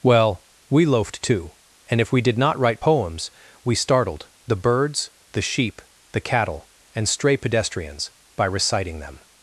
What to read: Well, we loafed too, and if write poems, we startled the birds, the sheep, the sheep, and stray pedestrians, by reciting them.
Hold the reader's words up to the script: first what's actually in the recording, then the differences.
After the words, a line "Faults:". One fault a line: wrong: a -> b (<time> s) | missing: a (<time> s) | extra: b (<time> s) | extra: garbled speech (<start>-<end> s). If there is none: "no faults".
Well, we loafed too, and if we did not write poems, we startled the birds, the sheep, the cattle, and stray pedestrians, by reciting them.
Faults:
extra: we did not (2.1 s)
wrong: sheep -> cattle (6.2 s)